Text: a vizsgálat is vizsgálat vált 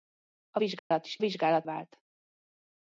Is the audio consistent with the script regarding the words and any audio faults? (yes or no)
no